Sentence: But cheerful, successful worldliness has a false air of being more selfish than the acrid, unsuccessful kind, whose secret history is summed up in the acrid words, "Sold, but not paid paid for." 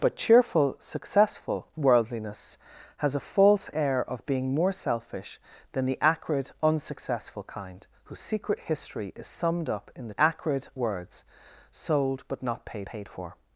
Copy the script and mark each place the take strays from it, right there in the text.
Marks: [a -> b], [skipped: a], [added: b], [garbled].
But cheerful, successful worldliness has a false air of being more selfish than the acrid, unsuccessful kind, whose secret history is summed up in the acrid words, "Sold, but not paid paid for."